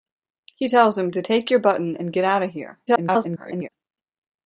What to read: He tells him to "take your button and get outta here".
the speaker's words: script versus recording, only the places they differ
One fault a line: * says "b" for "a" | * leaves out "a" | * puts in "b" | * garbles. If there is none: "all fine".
* garbles